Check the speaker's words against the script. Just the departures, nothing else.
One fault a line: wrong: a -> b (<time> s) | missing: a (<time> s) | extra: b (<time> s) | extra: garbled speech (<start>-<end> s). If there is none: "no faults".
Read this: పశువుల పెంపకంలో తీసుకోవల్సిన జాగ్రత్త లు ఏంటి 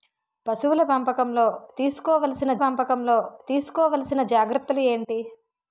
extra: పెంపకంలో తీసుకోవల్సిన (2.5 s)